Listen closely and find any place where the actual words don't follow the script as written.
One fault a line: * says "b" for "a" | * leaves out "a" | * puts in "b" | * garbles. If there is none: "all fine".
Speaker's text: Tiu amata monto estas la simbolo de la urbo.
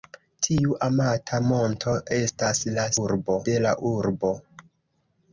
* says "urbo" for "simbolo"